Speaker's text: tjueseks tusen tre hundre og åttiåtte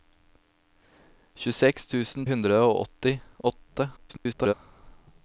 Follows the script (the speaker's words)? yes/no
no